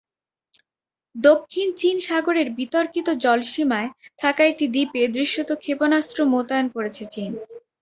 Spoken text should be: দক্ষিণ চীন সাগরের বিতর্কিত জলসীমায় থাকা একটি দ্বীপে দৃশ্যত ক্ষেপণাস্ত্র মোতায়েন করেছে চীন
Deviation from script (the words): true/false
false